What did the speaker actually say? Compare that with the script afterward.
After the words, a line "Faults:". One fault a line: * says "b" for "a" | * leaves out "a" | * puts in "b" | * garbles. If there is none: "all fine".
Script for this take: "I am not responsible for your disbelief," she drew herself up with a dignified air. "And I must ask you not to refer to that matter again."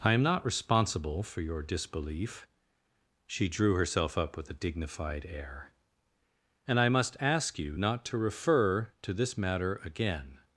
"I am not responsible for your disbelief," she drew herself up with a dignified air. "And I must ask you not to refer to this matter again."
Faults:
* says "this" for "that"